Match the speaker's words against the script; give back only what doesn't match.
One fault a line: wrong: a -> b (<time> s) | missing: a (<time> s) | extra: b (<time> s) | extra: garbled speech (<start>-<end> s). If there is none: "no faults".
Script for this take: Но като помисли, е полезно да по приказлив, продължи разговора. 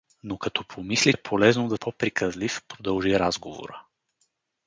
no faults